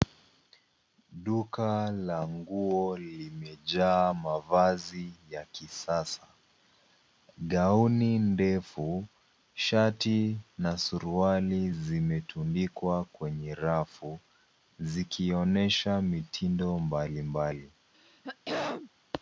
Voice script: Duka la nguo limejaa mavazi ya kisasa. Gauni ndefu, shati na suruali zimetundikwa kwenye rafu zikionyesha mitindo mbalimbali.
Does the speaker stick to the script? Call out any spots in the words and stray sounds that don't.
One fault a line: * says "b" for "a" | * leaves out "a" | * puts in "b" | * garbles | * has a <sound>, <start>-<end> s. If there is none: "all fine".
* has a throat clearing, 17.9-18.9 s